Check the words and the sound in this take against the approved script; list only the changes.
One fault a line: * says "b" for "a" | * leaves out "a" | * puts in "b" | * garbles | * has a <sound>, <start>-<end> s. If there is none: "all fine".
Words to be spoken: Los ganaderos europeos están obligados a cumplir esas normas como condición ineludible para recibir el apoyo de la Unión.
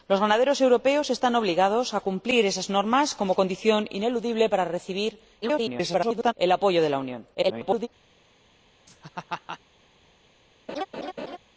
* garbles
* garbles
* has a laugh, 8.9-9.6 s
* has a laugh, 10.7-11.4 s